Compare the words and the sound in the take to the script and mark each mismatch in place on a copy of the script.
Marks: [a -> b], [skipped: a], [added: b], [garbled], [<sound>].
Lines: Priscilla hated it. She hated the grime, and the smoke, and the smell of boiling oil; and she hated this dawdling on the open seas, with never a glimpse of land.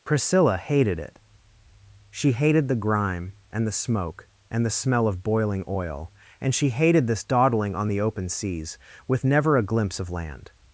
Priscilla hated it. She hated the grime, and the smoke, and the smell of boiling oil; and she hated this dawdling on the open seas, with never a glimpse of land.